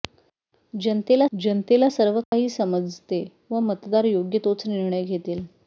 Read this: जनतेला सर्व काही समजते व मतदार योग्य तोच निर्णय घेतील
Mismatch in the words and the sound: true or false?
true